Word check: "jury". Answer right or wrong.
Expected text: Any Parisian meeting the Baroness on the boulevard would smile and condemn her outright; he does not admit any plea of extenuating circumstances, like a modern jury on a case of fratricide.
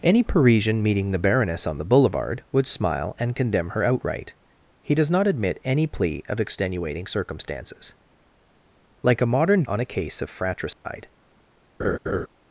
wrong